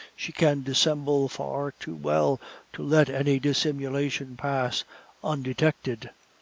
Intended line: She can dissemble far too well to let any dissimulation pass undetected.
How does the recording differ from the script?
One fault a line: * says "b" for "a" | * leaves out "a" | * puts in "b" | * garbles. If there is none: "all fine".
all fine